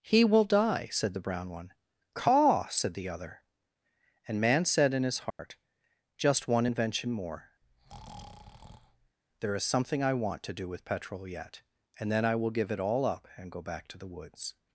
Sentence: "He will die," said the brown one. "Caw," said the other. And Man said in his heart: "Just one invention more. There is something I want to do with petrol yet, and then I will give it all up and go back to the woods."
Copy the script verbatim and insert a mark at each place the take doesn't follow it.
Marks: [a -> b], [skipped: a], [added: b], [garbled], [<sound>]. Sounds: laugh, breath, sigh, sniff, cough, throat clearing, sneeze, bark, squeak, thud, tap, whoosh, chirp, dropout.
"He will die," said the brown one. "Caw," said the other. And Man said in his heart: [dropout] "Just one invention more. [breath] There is something I want to do with petrol yet, and then I will give it all up and go back to the woods."